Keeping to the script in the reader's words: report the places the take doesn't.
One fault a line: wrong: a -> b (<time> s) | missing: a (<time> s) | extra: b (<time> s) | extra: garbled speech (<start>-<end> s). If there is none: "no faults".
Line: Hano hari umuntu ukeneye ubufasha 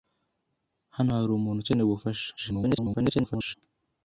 extra: garbled speech (2.4-3.5 s)